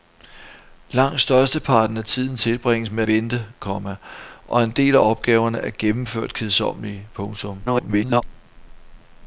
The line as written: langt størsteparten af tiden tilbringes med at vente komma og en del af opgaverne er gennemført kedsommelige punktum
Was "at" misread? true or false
true